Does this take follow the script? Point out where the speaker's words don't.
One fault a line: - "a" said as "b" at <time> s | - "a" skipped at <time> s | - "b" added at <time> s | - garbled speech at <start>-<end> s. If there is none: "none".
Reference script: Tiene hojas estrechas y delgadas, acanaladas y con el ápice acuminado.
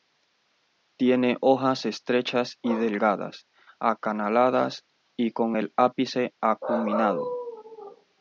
none